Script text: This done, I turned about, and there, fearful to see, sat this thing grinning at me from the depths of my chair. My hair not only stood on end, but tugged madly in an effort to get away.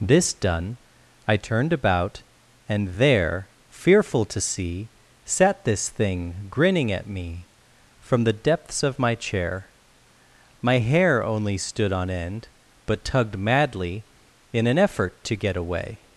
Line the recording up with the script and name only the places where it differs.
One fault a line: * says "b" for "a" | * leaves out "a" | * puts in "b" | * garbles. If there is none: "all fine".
* leaves out "not"